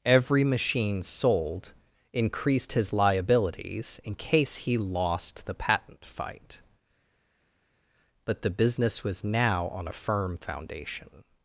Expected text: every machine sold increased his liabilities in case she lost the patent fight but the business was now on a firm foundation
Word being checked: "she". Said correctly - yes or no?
no